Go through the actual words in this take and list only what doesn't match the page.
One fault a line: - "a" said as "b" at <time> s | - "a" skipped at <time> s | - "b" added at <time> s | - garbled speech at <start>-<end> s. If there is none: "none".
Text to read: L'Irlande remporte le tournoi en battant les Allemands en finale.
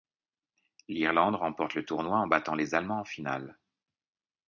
none